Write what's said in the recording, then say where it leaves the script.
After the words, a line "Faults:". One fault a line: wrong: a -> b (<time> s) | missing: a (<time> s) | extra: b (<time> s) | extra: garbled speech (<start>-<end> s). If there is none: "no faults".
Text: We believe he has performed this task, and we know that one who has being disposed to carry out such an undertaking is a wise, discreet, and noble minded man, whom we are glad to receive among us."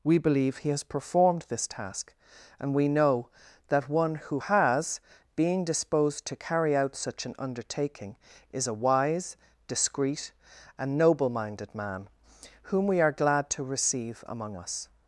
We believe he has performed this task, and we know that one who has being disposed to carry out such an undertaking is a wise, discreet, and noble minded man, whom we are glad to receive among us."
Faults:
no faults